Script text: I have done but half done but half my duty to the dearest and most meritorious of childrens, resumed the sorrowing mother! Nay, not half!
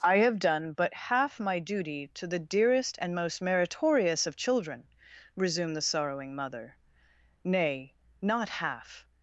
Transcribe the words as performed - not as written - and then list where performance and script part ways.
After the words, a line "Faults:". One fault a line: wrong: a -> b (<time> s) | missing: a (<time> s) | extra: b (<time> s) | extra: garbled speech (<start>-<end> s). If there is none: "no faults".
I have done but half my duty to the dearest and most meritorious of children, resumed the sorrowing mother! Nay, not half!
Faults:
missing: done but half (1.4 s)
wrong: childrens -> children (4.4 s)